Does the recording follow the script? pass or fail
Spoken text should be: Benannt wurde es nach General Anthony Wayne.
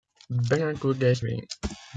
fail